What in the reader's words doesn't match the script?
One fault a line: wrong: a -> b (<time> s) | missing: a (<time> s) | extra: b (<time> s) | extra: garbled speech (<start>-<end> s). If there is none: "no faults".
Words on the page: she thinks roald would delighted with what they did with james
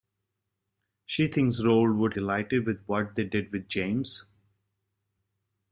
no faults